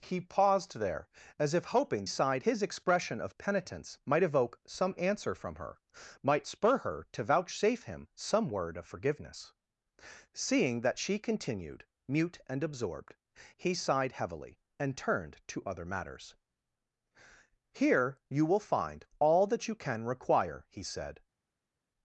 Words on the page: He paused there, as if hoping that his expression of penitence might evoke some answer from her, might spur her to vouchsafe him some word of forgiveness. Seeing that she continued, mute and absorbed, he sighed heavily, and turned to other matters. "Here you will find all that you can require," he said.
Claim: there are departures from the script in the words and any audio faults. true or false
true